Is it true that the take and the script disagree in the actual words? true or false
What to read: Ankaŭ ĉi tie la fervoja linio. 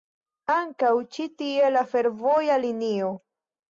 false